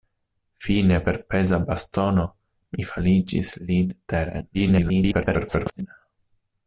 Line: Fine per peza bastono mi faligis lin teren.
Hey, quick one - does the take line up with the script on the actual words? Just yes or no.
no